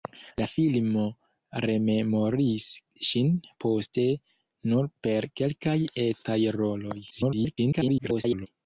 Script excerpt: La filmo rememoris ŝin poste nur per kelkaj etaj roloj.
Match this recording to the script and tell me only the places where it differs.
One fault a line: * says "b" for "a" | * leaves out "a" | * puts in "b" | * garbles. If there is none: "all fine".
* garbles